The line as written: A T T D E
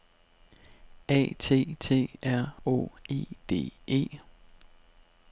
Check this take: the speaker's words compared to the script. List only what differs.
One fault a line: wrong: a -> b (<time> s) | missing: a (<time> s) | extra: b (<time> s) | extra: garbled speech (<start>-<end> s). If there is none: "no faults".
extra: R Å E (2.2 s)